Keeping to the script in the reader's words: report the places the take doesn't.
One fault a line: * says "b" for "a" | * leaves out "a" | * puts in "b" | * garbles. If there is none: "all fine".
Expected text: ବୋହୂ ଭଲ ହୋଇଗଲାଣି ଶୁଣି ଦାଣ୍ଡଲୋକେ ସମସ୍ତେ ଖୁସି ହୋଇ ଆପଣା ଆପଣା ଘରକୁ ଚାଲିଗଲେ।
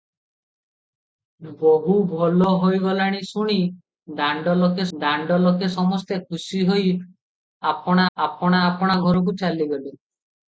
* puts in "ଦାଣ୍ଡଲୋକେ"
* puts in "ଆପଣା"